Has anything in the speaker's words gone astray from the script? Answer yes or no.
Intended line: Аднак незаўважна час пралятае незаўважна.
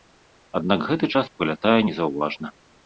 yes